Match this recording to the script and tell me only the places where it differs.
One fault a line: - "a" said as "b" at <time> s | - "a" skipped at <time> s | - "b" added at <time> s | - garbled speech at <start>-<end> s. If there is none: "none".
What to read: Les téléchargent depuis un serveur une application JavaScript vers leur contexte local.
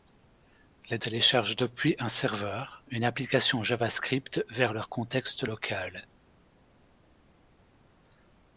none